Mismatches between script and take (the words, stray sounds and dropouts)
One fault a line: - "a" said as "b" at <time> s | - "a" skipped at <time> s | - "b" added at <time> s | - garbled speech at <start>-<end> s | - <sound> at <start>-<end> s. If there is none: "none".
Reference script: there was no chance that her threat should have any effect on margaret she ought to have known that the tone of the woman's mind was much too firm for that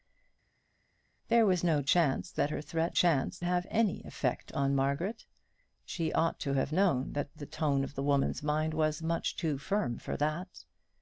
- "should" said as "chance" at 2.9 s